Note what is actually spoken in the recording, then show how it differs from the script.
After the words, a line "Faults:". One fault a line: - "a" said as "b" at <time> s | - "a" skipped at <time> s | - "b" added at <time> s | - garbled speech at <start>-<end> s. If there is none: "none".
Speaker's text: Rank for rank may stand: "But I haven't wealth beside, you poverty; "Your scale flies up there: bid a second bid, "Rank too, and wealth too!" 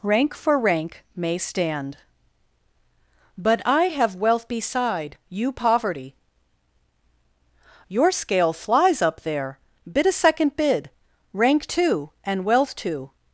Rank for rank may stand: "But I have wealth beside, you poverty; "Your scale flies up there: bid a second bid, "Rank too, and wealth too!"
Faults:
- "haven't" said as "have" at 3.9 s